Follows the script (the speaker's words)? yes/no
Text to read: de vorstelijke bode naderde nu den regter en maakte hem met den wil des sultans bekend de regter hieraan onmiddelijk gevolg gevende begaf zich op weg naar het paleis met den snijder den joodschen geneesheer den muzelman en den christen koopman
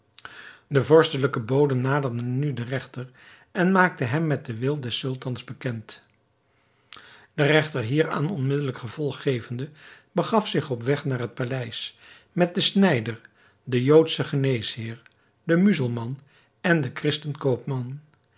yes